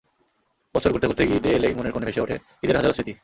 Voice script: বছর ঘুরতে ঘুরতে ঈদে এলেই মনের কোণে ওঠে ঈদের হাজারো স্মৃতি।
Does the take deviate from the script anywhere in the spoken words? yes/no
yes